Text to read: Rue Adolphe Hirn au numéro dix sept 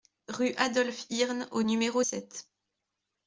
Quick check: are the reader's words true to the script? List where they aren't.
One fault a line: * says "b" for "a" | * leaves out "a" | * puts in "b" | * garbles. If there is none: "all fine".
* leaves out "dix"